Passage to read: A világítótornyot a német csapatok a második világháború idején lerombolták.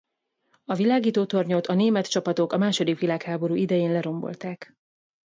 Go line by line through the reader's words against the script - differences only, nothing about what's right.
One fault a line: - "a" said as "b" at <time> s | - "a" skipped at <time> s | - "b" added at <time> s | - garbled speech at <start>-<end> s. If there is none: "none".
none